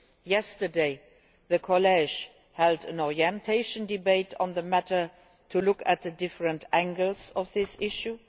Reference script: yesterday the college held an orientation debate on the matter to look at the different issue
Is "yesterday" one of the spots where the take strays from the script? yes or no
no